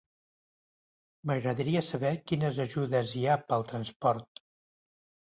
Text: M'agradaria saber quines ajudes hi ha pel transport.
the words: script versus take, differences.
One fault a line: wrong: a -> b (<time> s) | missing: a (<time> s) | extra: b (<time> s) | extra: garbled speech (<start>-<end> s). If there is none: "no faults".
no faults